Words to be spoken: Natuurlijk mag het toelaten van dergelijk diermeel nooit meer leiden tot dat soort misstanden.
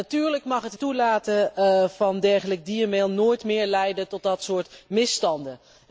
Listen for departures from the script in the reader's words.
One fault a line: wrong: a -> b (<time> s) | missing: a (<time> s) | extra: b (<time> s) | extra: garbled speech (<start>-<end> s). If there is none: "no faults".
no faults